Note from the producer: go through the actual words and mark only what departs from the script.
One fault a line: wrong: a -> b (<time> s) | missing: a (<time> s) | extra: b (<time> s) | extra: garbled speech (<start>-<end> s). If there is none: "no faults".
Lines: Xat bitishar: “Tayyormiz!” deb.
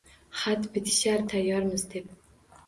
no faults